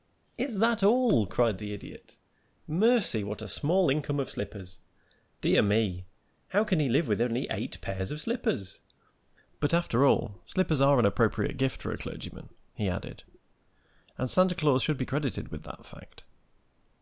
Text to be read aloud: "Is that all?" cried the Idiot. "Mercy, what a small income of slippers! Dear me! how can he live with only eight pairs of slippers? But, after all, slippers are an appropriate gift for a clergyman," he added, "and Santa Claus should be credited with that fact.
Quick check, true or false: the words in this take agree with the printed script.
true